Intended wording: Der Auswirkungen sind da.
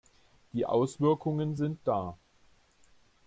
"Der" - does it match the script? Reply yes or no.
no